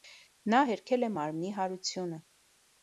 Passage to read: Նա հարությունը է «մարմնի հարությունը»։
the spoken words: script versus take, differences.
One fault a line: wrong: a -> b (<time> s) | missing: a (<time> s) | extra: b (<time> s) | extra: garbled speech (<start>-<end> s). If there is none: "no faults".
wrong: հարությունը -> հերքել (0.7 s)